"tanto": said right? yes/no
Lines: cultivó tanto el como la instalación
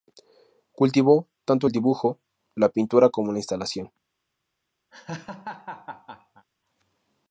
yes